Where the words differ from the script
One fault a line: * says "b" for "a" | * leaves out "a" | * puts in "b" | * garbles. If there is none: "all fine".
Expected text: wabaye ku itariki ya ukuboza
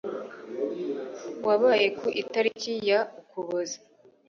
all fine